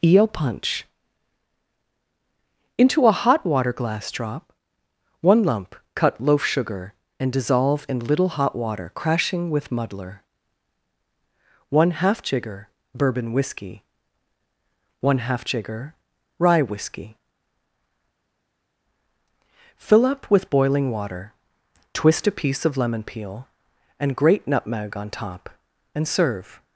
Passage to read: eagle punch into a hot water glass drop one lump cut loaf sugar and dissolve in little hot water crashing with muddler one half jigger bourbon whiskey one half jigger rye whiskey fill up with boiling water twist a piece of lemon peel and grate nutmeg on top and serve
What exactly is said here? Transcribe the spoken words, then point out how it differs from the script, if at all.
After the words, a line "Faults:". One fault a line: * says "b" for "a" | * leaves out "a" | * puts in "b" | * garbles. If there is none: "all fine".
eel punch into a hot water glass drop one lump cut loaf sugar and dissolve in little hot water crashing with muddler one half jigger bourbon whiskey one half jigger rye whiskey fill up with boiling water twist a piece of lemon peel and grate nutmeg on top and serve
Faults:
* says "eel" for "eagle"